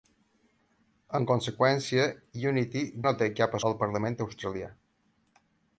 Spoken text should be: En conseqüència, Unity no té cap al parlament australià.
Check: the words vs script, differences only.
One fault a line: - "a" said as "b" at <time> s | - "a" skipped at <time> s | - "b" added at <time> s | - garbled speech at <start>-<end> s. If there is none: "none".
none